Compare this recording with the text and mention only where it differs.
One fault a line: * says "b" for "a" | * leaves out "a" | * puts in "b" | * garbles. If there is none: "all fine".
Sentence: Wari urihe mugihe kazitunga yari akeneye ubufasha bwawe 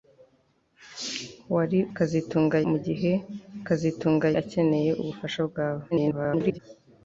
* says "kazitunga" for "urihe"
* leaves out "yari"
* garbles